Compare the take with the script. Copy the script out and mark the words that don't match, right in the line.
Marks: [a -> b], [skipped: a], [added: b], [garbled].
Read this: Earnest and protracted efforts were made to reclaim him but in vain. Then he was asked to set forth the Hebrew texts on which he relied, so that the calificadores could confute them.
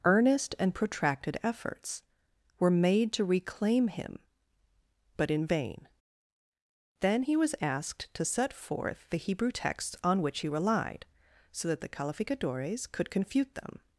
Earnest and protracted efforts were made to reclaim him but in vain. Then he was asked to set forth the Hebrew texts on which he relied, so that the calificadores could confute them.